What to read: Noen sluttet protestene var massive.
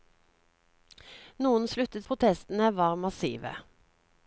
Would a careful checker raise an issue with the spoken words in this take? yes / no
no